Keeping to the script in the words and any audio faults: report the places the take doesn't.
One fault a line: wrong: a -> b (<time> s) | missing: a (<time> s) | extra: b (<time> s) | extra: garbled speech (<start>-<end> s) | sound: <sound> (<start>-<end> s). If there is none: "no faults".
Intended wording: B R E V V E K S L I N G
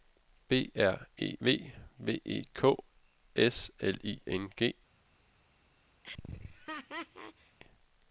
sound: laugh (6.0-7.6 s)